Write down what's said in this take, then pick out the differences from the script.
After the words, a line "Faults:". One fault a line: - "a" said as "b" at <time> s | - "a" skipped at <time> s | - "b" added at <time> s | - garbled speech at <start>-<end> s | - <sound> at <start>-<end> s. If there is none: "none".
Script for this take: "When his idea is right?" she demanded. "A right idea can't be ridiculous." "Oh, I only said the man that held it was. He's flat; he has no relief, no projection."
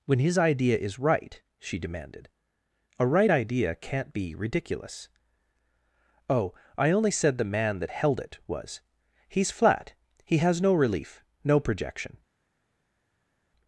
"When his idea is right?" she demanded. "A right idea can't be ridiculous." "Oh, I only said the man that held it was. He's flat; he has no relief, no projection."
Faults:
none